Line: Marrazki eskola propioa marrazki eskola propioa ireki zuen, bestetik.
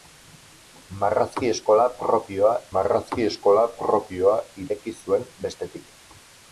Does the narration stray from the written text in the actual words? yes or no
no